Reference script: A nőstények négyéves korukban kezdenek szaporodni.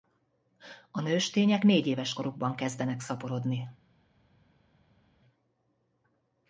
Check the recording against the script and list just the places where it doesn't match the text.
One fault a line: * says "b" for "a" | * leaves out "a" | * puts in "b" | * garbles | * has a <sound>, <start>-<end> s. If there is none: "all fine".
all fine